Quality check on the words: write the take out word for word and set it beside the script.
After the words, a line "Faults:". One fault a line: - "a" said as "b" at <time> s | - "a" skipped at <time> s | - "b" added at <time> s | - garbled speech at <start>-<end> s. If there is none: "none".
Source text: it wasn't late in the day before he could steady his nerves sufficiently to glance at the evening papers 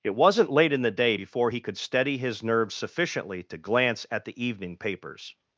it wasn't late in the day before he could steady his nerves sufficiently to glance at the evening papers
Faults:
none